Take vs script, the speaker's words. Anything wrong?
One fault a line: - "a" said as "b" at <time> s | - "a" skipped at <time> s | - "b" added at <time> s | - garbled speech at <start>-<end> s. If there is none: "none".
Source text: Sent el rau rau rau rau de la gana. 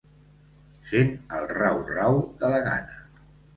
- "rau rau" skipped at 2.2 s